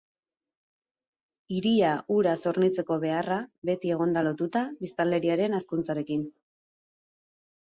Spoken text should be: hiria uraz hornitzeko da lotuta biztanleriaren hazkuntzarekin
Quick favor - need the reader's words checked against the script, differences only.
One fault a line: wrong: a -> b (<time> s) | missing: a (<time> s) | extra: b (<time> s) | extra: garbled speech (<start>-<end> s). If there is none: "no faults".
extra: beharra beti egon (3.0 s)